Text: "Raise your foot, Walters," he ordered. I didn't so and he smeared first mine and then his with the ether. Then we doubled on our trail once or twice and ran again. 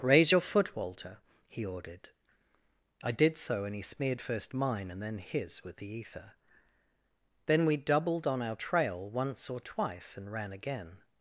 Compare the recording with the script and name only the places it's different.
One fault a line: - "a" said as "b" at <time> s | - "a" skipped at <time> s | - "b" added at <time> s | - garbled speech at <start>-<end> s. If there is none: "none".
- "Walters" said as "Walter" at 0.8 s
- "didn't" said as "did" at 3.1 s